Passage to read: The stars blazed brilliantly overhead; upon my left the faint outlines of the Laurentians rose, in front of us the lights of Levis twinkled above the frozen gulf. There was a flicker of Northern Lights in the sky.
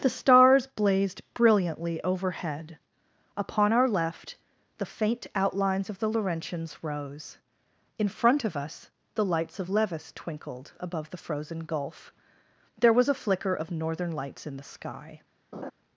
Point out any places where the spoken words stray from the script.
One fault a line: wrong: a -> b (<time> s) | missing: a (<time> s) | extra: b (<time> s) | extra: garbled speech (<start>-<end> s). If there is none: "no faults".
wrong: my -> our (3.7 s)